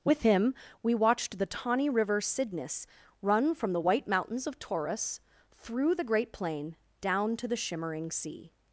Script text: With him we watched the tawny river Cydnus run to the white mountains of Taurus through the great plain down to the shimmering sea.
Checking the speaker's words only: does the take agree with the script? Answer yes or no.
no